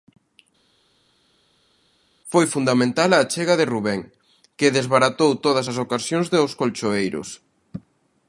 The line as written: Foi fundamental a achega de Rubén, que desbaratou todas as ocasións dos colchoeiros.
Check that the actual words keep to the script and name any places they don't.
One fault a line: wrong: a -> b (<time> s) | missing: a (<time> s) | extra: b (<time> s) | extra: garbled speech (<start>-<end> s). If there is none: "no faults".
no faults